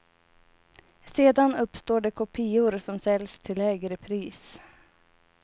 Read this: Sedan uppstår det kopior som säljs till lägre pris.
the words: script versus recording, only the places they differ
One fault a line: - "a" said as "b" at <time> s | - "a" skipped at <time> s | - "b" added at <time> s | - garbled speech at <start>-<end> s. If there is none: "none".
none